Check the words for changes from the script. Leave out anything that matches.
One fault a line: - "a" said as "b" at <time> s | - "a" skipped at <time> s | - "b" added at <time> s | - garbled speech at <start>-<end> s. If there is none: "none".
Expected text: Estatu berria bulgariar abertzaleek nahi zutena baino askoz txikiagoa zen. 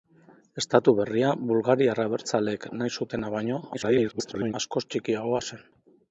- garbled speech at 3.7-4.5 s